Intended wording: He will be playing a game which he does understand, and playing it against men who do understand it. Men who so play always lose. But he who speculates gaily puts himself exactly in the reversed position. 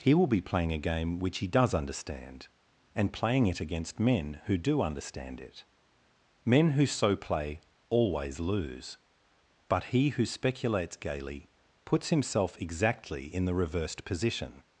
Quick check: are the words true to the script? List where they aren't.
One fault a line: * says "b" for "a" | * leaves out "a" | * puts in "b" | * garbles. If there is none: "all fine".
all fine